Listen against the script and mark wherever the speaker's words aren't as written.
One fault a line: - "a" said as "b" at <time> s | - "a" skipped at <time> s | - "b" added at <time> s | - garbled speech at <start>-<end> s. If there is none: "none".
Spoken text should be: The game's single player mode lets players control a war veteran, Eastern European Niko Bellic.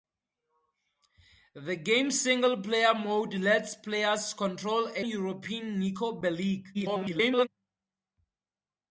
- "war veteran Eastern" skipped at 5.0 s
- garbled speech at 6.7-7.5 s